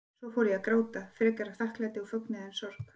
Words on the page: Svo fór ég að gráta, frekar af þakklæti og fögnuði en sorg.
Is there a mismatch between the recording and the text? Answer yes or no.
no